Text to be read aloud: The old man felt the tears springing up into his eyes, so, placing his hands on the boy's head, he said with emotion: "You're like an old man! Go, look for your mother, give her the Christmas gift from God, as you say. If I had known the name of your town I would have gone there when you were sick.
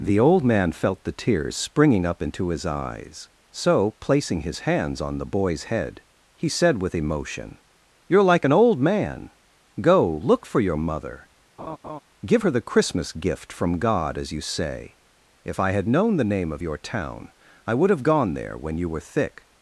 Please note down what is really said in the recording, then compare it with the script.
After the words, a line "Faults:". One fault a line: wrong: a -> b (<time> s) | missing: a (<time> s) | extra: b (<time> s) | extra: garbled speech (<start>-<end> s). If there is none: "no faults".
The old man felt the tears springing up into his eyes, so, placing his hands on the boy's head, he said with emotion: "You're like an old man! Go, look for your mother, give her the Christmas gift from God, as you say. If I had known the name of your town I would have gone there when you were thick.
Faults:
wrong: sick -> thick (19.0 s)